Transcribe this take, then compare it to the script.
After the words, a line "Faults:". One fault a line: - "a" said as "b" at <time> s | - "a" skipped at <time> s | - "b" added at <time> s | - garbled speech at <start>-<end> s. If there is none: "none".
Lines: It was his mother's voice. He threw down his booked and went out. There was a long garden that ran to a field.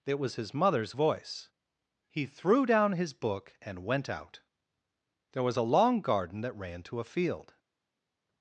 It was his mother's voice. He threw down his book and went out. There was a long garden that ran to a field.
Faults:
- "booked" said as "book" at 3.1 s